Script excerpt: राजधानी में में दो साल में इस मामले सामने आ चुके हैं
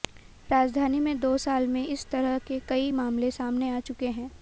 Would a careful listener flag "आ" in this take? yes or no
no